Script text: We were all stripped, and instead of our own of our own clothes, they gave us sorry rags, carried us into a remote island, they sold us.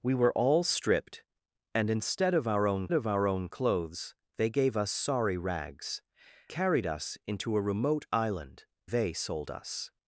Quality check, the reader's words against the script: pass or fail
pass